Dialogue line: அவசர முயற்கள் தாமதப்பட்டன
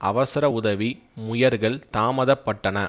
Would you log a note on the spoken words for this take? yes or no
yes